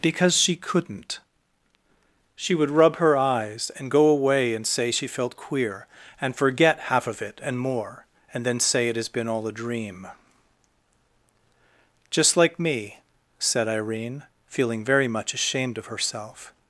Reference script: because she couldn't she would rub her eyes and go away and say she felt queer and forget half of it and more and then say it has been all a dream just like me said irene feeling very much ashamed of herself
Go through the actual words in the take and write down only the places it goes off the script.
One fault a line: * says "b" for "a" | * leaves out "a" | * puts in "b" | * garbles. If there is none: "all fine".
all fine